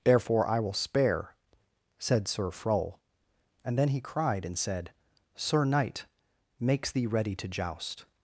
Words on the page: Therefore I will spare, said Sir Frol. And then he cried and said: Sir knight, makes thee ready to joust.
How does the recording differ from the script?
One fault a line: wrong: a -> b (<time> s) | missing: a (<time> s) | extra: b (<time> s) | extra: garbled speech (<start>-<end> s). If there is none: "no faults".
no faults